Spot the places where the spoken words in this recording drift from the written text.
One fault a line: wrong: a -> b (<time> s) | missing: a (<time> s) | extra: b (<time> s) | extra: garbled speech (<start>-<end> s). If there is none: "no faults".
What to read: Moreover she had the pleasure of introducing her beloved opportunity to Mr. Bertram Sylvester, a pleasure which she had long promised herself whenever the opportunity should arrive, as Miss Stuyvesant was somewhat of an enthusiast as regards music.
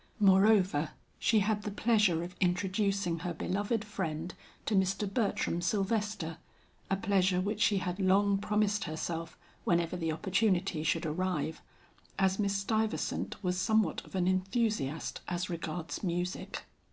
wrong: opportunity -> friend (3.9 s)